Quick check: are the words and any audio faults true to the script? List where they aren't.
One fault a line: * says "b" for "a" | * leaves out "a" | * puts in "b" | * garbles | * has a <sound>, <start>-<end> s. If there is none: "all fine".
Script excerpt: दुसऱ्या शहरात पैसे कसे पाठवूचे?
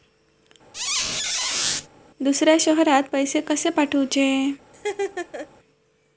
* has a squeak, 0.7-1.9 s
* has a laugh, 4.7-5.5 s